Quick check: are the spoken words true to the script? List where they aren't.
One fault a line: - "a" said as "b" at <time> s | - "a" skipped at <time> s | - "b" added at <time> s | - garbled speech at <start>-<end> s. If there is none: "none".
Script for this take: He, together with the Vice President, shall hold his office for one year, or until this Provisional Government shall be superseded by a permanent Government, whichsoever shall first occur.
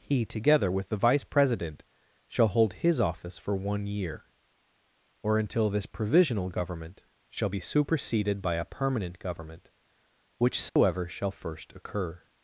none